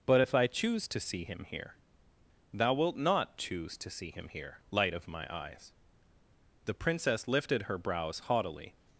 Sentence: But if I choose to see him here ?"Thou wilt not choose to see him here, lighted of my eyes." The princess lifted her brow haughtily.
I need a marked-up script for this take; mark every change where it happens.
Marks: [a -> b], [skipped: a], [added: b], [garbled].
But if I choose to see him here ?"Thou wilt not choose to see him here, [lighted -> light] of my eyes." The princess lifted her [brow -> brows] haughtily.